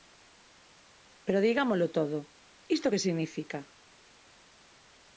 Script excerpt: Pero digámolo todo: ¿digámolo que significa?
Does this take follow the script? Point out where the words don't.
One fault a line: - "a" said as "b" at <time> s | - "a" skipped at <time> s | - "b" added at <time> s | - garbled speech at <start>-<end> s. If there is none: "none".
- "digámolo" said as "isto" at 2.8 s